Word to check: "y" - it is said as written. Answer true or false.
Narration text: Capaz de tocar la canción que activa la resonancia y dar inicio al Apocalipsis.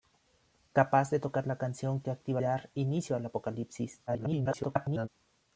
false